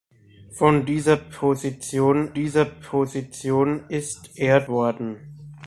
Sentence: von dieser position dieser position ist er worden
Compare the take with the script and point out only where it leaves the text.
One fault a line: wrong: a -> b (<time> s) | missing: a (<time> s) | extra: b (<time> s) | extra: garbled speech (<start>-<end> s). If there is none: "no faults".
no faults